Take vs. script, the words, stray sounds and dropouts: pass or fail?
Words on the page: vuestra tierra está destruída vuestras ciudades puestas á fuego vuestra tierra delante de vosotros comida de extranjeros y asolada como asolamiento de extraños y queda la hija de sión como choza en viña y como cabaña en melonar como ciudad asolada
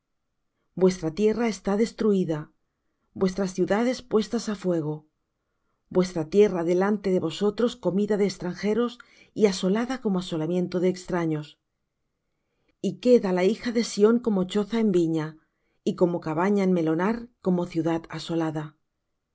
pass